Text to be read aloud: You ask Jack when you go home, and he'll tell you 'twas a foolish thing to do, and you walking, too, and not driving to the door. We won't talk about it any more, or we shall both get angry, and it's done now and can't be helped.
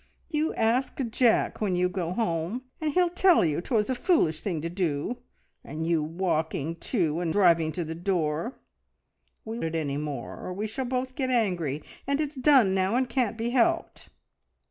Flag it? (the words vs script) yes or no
yes